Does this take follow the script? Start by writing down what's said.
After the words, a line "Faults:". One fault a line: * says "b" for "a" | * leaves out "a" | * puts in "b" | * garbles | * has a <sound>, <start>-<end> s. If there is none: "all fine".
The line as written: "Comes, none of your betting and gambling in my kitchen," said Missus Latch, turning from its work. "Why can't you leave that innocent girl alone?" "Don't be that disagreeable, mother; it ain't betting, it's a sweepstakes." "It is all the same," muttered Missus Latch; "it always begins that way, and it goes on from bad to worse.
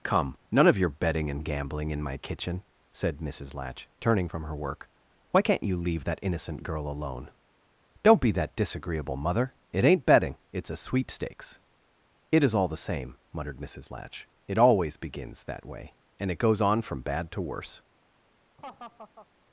"Come, none of your betting and gambling in my kitchen," said Missus Latch, turning from her work. "Why can't you leave that innocent girl alone?" "Don't be that disagreeable, mother; it ain't betting, it's a sweepstakes." "It is all the same," muttered Missus Latch; "it always begins that way, and it goes on from bad to worse.
Faults:
* says "Come" for "Comes"
* says "her" for "its"
* has a laugh, 18.6-19.3 s